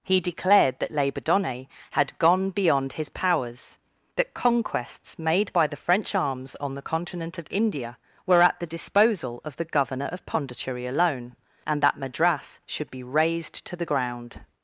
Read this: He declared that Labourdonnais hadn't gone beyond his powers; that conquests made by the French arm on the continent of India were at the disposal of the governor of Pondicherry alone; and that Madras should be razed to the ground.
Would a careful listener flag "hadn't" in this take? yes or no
yes